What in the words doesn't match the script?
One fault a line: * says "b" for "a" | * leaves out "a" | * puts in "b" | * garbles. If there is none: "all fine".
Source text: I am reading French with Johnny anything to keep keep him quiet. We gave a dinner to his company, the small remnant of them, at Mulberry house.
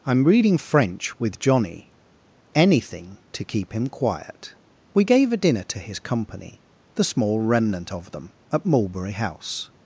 * leaves out "keep"